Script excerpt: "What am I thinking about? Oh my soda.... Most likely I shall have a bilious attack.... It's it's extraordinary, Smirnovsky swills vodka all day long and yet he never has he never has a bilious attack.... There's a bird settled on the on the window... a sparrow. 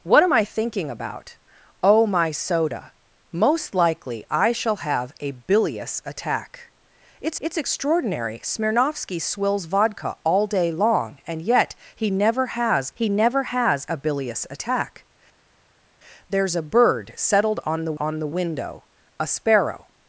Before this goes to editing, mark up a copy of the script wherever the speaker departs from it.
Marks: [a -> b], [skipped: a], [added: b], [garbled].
"What am I thinking about? Oh my soda.... Most likely I shall have a bilious attack.... It's it's extraordinary, Smirnovsky swills vodka all day long and yet he never has he never has a bilious attack.... There's a bird settled on the on the window... a sparrow.